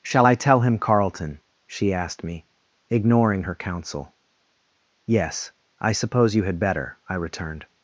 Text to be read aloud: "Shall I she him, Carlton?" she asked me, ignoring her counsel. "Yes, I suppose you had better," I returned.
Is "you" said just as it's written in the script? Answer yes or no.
yes